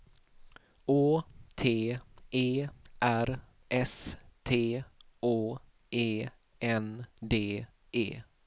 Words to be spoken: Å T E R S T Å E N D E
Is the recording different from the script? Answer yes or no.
no